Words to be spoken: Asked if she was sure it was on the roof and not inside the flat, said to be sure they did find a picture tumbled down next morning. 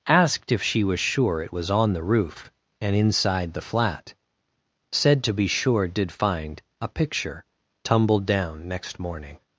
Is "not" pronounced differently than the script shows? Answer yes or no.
yes